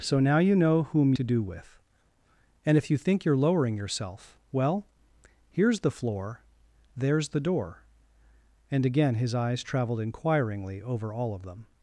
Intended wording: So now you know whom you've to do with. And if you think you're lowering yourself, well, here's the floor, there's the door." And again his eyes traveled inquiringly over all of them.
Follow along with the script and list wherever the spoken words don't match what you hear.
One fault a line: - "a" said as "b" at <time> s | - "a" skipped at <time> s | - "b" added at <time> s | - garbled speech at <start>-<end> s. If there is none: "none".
- "you've" skipped at 1.1 s